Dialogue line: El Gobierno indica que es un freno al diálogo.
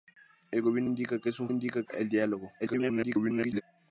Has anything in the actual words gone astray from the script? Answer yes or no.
yes